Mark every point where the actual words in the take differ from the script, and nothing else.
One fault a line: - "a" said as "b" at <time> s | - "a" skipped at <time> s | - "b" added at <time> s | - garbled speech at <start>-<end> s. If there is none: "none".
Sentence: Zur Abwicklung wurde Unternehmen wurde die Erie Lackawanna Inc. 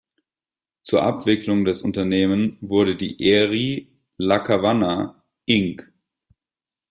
- "wurde" said as "des" at 1.6 s